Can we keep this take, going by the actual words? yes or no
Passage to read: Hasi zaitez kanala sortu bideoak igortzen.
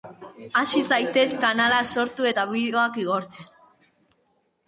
no